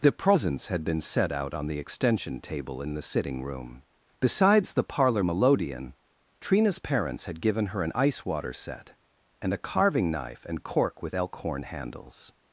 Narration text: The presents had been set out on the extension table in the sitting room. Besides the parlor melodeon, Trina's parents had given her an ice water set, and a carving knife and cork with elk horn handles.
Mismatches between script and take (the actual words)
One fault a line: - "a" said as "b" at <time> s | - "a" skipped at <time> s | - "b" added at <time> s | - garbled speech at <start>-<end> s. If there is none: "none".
none